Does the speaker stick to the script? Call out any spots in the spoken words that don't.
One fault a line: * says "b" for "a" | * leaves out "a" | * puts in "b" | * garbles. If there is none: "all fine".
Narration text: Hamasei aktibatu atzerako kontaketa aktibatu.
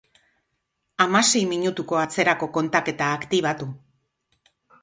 * says "minutuko" for "aktibatu"